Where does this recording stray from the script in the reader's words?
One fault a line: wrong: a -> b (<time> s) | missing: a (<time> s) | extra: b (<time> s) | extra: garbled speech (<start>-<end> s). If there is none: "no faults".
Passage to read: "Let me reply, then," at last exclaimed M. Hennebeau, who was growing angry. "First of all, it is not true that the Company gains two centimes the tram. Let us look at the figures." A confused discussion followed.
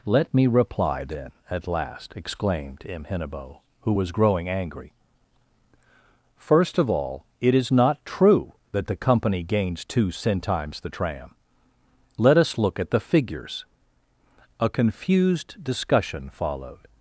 no faults